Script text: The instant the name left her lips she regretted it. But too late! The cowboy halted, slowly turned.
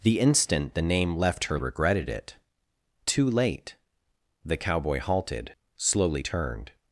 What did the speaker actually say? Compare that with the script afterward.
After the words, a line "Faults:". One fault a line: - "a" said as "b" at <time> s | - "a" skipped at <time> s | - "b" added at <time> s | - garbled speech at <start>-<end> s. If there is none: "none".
The instant the name left her regretted it. Too late! The cowboy halted, slowly turned.
Faults:
- "lips she" skipped at 1.6 s
- "But" skipped at 2.3 s